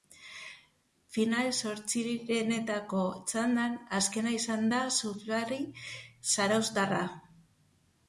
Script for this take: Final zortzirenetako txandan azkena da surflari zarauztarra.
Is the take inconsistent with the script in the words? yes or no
yes